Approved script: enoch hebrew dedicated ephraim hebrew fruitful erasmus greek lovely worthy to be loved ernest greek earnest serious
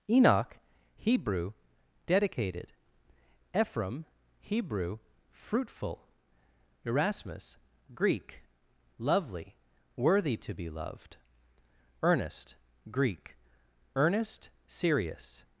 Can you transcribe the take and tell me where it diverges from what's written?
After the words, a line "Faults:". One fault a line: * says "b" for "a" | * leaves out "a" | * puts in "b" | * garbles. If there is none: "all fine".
enoch hebrew dedicated ephraim hebrew fruitful erasmus greek lovely worthy to be loved ernest greek earnest serious
Faults:
all fine